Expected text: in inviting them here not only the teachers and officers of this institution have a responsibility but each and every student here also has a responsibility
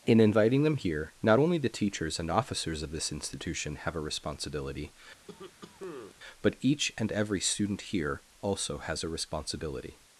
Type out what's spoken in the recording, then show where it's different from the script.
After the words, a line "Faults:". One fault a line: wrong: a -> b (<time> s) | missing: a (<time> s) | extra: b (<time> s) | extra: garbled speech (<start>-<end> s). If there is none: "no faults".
in inviting them here not only the teachers and officers of this institution have a responsibility but each and every student here also has a responsibility
Faults:
no faults